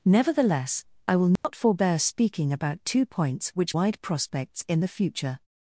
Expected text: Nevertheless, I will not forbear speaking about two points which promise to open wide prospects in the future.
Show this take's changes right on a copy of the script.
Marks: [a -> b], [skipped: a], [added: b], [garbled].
Nevertheless, I will not forbear speaking about two points which [skipped: promise to open] wide prospects in the future.